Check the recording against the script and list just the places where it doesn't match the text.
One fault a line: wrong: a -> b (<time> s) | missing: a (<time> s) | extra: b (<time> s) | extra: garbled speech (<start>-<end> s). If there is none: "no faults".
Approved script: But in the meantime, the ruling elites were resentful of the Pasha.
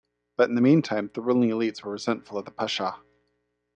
no faults